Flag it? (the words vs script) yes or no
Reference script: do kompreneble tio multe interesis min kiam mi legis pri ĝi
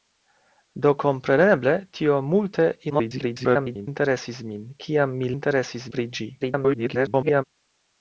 yes